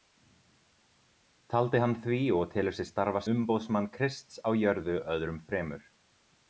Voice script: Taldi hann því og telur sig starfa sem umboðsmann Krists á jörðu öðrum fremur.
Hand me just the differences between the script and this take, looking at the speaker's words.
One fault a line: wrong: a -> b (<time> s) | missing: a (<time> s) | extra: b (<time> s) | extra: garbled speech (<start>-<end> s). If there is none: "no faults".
missing: sem (3.2 s)